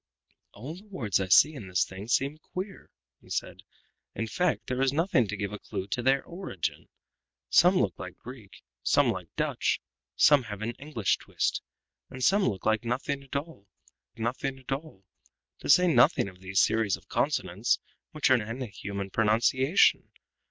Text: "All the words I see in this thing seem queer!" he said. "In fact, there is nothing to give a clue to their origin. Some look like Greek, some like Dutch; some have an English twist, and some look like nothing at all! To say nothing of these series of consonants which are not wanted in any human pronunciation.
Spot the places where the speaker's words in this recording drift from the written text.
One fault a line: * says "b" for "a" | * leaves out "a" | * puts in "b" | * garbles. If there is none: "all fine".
* puts in "nothing at all"
* leaves out "not wanted in"